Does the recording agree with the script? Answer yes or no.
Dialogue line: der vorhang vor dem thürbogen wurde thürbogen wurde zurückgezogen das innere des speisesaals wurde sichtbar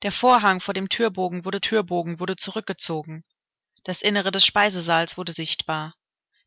yes